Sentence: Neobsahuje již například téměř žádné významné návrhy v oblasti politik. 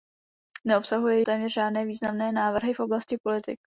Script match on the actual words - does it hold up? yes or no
no